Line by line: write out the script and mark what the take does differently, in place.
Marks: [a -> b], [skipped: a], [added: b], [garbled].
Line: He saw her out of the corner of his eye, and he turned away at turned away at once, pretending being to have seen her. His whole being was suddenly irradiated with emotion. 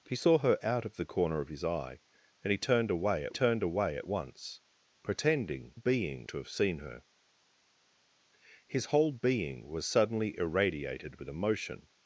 He saw her out of the corner of his eye, and he turned away at turned away at once, pretending being to have seen her. His whole being was suddenly irradiated with emotion.